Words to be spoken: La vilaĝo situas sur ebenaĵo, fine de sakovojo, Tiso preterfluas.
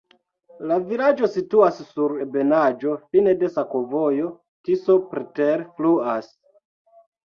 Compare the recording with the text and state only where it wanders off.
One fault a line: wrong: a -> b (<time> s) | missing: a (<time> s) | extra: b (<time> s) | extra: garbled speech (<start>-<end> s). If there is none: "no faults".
no faults